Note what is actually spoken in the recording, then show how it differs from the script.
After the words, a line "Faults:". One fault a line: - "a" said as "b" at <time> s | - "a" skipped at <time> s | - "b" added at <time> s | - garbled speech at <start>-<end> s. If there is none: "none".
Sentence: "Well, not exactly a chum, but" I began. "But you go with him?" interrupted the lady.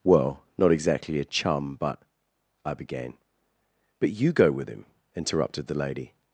"Well, not exactly a chum, but" I began. "But you go with him?" interrupted the lady.
Faults:
none